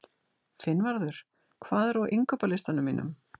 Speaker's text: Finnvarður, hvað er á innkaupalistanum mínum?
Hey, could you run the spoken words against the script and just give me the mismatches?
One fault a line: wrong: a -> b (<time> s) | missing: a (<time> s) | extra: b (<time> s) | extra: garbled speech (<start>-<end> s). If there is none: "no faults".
no faults